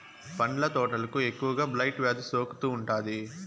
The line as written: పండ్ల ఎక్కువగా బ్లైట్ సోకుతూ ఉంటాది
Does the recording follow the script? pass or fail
fail